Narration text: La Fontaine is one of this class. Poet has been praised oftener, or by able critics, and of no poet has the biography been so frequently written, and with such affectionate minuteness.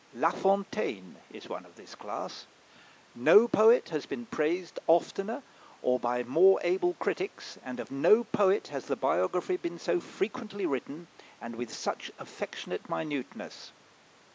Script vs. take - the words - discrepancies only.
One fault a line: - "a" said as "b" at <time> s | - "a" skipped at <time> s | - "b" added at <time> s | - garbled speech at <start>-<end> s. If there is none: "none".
- "No" added at 3.1 s
- "more" added at 6.2 s